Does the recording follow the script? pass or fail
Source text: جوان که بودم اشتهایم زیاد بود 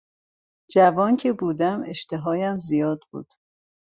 pass